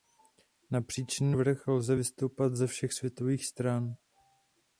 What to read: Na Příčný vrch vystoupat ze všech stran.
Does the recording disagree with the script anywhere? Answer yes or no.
yes